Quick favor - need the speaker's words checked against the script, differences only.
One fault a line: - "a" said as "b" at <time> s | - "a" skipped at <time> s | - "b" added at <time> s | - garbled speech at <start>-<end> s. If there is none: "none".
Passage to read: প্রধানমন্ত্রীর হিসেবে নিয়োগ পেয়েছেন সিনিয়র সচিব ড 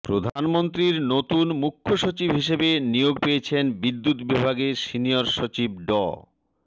- "নতুন মুখ্য সচিব" added at 1.1 s
- "বিদ্যুৎ বিভাগের" added at 3.8 s